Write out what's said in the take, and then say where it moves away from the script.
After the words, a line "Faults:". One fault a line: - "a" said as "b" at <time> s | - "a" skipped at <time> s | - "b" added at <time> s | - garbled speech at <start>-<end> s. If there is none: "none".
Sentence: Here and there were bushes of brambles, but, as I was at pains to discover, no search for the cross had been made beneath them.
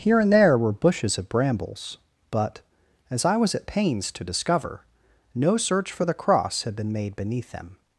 Here and there were bushes of brambles, but, as I was at pains to discover, no search for the cross had been made beneath them.
Faults:
none